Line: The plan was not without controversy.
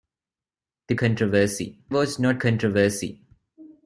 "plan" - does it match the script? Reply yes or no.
no